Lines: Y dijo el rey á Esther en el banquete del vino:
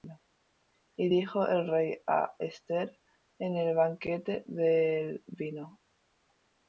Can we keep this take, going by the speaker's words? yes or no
yes